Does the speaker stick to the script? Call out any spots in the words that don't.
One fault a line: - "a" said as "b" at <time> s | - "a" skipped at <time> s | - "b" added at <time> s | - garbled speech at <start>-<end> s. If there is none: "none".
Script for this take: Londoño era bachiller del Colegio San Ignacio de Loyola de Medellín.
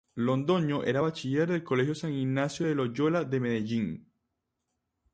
none